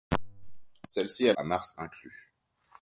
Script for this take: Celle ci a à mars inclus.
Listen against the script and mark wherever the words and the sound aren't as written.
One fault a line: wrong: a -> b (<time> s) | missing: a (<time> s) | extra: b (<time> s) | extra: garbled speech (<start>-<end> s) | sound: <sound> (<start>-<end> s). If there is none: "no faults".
no faults